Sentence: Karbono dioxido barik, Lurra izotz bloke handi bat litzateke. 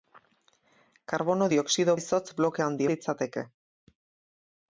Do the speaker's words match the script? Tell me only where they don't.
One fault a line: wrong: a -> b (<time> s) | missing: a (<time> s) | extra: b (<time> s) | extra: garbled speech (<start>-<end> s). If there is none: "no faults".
missing: barik Lurra (2.0 s)
missing: bat (2.9 s)